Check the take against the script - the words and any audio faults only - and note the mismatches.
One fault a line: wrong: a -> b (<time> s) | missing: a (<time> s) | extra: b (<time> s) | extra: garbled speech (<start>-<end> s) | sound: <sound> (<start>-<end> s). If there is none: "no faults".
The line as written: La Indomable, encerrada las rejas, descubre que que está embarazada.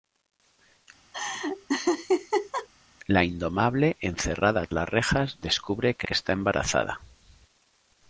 sound: laugh (1.1-2.7 s)